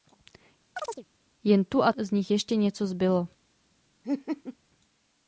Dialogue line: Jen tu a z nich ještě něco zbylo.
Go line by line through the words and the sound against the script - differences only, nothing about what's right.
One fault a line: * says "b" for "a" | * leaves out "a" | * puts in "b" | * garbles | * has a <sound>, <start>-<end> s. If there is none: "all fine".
* has a chirp, 0.8-1.1 s
* has a laugh, 4.0-4.6 s